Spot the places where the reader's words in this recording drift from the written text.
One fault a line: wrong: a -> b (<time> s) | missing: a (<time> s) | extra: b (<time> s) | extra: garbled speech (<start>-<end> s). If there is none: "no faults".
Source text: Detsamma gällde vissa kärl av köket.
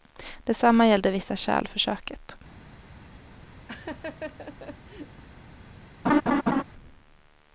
wrong: av -> för (1.7 s)